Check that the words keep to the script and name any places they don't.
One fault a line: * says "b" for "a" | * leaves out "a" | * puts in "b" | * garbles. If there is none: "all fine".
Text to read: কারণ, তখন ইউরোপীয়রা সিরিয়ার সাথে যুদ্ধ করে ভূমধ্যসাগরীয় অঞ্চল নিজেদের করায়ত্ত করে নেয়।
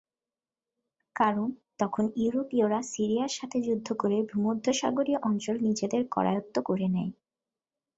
all fine